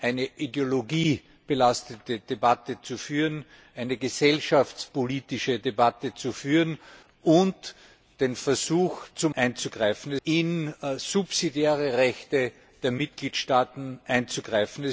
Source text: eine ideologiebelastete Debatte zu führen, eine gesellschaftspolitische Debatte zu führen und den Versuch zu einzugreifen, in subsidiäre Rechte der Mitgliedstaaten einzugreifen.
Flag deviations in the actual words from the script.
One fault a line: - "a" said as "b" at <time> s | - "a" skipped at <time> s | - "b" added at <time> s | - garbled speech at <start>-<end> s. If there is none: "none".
none